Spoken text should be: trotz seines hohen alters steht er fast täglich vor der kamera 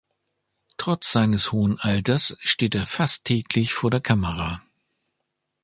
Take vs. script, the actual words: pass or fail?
pass